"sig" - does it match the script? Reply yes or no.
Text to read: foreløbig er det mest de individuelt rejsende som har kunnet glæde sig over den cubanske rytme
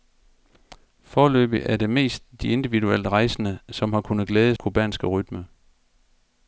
no